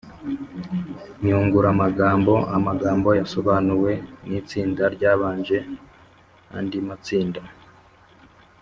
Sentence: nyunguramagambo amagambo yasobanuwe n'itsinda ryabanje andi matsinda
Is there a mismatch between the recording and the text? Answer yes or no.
no